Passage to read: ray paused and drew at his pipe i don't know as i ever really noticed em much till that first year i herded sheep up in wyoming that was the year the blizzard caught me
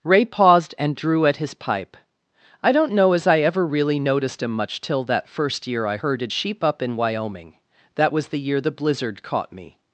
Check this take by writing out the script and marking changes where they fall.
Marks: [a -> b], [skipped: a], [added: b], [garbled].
ray paused and drew at his pipe i don't know as i ever really noticed em much till that first year i herded sheep up in wyoming that was the year the blizzard caught me